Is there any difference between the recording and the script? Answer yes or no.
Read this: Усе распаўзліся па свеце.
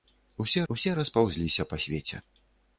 yes